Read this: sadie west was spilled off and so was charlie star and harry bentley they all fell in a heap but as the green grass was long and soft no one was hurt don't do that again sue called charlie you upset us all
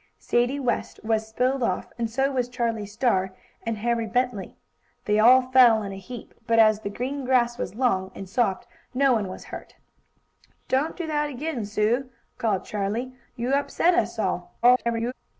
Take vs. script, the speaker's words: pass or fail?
fail